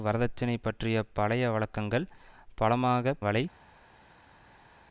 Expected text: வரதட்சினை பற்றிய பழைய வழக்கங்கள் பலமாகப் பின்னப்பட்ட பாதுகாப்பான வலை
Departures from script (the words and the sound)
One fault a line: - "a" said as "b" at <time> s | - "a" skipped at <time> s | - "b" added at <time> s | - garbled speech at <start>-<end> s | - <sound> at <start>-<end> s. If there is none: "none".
- "பின்னப்பட்ட பாதுகாப்பான" skipped at 3.2 s